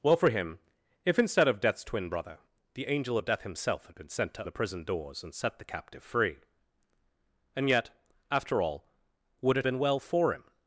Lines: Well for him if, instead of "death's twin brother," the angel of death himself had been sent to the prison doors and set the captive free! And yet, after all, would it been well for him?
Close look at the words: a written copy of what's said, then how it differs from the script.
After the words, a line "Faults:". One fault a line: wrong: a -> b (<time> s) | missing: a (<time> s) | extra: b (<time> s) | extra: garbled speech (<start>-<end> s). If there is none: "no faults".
Well for him if, instead of "death's twin brother," the angel of death himself had been sent to the prison doors and set the captive free! And yet, after all, would it been well for him?
Faults:
no faults